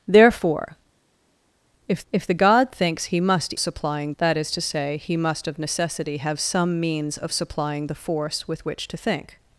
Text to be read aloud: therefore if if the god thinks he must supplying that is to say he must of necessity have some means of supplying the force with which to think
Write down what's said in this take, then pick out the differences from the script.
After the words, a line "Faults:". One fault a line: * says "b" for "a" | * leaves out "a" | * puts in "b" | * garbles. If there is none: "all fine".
therefore if if the god thinks he must supplying that is to say he must of necessity have some means of supplying the force with which to think
Faults:
all fine